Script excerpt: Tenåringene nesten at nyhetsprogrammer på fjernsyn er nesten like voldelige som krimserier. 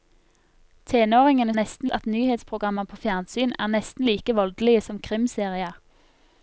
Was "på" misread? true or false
false